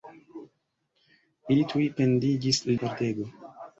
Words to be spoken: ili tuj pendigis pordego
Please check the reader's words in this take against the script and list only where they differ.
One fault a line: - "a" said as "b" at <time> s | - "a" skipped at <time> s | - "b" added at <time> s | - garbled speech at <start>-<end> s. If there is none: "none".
none